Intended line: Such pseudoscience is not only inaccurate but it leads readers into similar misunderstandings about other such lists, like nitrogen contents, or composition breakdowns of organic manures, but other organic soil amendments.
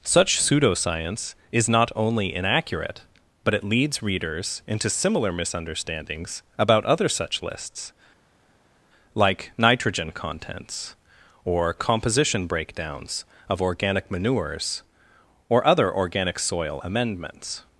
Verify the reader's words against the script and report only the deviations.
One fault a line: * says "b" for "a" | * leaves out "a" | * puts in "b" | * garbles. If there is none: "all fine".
* says "or" for "but"